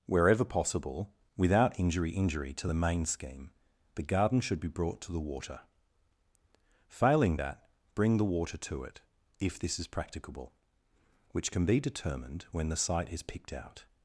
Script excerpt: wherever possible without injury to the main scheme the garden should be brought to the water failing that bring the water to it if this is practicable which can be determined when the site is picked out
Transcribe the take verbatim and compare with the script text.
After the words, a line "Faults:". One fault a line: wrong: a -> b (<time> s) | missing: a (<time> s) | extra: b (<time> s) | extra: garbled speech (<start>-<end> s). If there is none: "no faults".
wherever possible without injury injury to the main scheme the garden should be brought to the water failing that bring the water to it if this is practicable which can be determined when the site is picked out
Faults:
extra: injury (2.1 s)